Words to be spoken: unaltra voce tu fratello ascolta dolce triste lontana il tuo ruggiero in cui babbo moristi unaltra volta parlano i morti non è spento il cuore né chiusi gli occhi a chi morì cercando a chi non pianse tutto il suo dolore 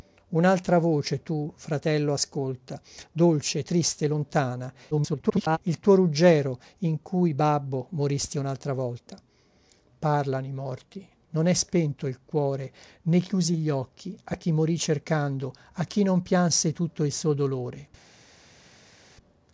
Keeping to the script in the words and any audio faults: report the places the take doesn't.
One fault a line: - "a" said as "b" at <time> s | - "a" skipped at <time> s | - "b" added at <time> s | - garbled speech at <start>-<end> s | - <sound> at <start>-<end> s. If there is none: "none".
- garbled speech at 4.9-5.6 s